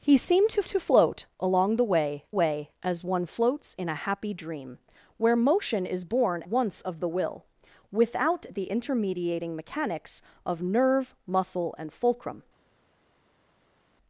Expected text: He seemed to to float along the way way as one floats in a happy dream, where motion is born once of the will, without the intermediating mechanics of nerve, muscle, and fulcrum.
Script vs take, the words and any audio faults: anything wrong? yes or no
no